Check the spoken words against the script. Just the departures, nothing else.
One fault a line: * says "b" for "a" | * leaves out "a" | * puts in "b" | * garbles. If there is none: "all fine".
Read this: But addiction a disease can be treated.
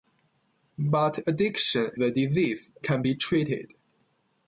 all fine